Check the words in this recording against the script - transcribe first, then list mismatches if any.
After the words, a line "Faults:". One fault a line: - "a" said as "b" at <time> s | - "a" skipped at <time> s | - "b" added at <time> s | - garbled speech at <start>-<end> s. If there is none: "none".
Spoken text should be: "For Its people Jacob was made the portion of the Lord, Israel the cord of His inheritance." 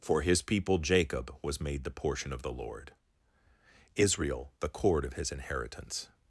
"For His people Jacob was made the portion of the Lord, Israel the cord of His inheritance."
Faults:
- "Its" said as "His" at 0.2 s